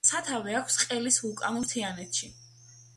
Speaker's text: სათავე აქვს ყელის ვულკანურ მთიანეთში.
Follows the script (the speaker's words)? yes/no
yes